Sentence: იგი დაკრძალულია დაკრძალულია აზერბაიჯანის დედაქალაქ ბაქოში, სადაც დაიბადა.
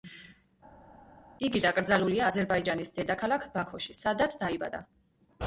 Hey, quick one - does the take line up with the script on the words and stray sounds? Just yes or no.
no